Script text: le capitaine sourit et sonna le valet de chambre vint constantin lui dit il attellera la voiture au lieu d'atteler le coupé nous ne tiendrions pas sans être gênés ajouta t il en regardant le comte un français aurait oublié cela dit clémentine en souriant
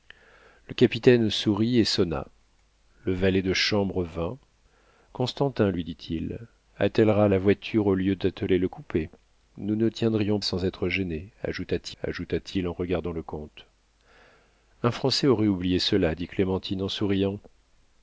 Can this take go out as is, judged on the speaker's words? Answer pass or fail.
fail